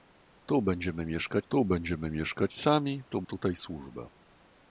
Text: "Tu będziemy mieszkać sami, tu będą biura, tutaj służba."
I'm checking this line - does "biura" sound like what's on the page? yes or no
no